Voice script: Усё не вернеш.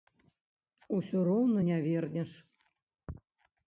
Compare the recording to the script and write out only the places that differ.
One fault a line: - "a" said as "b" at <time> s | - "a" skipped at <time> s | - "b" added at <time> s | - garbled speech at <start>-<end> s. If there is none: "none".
- "роўна" added at 1.3 s